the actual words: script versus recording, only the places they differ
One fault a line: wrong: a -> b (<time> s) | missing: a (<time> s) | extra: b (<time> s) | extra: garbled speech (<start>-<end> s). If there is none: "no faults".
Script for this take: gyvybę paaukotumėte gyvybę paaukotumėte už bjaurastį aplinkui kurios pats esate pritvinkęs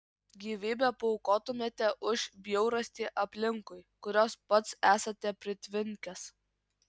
missing: gyvybę paaukotumėte (1.9 s)